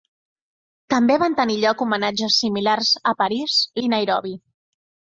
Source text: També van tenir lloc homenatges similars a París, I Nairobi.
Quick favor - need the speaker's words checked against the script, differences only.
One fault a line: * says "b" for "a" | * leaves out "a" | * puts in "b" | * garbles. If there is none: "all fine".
all fine